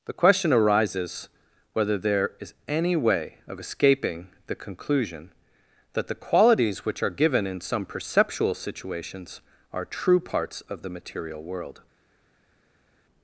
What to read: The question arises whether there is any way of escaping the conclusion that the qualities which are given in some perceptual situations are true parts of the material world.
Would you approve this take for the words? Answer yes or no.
yes